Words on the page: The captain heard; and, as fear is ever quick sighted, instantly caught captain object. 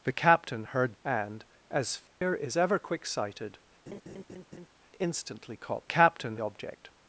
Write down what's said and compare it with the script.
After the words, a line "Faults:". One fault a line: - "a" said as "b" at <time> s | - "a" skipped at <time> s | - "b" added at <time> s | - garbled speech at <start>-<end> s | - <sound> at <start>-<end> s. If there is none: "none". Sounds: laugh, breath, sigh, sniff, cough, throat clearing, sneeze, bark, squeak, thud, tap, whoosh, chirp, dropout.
The captain heard; and, as fear is ever quick sighted, instantly caught captain object.
Faults:
- dropout at 2.1-2.2 s
- laugh at 3.9-4.7 s